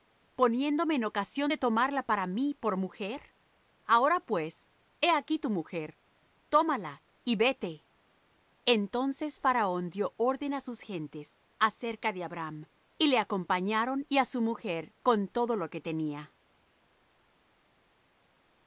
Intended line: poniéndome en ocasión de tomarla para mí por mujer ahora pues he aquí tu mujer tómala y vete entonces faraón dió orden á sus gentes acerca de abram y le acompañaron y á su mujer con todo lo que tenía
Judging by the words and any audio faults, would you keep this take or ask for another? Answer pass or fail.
pass